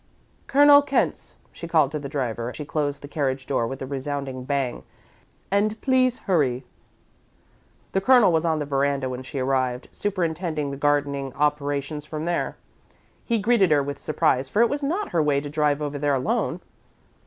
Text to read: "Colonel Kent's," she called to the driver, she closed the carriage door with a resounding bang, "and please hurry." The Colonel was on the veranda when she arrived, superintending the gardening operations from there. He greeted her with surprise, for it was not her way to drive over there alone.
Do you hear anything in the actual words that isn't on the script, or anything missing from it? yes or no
no